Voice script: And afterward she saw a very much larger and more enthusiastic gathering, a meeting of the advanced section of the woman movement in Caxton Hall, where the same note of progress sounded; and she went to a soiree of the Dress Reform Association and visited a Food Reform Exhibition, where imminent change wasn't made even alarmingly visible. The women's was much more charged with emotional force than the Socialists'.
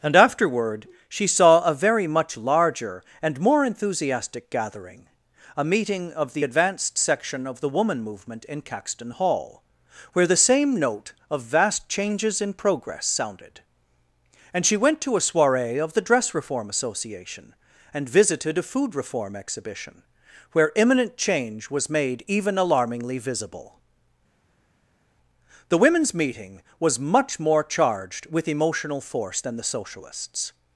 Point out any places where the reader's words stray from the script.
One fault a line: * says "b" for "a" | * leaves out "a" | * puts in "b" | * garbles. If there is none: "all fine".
* puts in "vast changes in"
* says "was" for "wasn't"
* puts in "meeting"